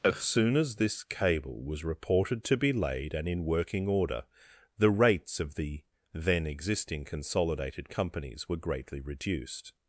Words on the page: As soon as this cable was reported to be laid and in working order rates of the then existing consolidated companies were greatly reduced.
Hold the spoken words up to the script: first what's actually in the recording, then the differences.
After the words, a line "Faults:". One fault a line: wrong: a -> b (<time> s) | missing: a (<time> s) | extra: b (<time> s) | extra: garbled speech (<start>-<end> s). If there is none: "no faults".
As soon as this cable was reported to be laid and in working order the rates of the then existing consolidated companies were greatly reduced.
Faults:
extra: the (4.8 s)